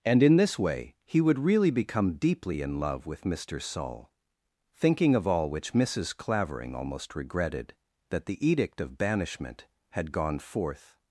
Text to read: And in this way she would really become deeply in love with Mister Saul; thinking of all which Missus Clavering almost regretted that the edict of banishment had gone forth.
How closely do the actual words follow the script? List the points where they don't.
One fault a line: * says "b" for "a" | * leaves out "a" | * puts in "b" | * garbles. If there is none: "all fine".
* says "he" for "she"